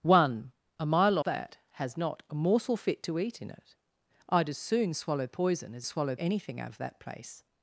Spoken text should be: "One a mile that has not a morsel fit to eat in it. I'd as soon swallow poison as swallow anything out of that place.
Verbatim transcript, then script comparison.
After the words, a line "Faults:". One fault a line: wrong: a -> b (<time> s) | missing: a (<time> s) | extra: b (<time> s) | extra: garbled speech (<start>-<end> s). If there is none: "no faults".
"One a mile that has not a morsel fit to eat in it. I'd as soon swallow poison as swallow anything out of that place.
Faults:
no faults